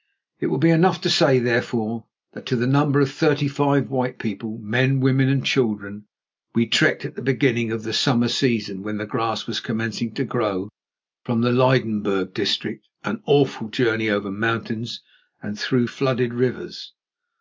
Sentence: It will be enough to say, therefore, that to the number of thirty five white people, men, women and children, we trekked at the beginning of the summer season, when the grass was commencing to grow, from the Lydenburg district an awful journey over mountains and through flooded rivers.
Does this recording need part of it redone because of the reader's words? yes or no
no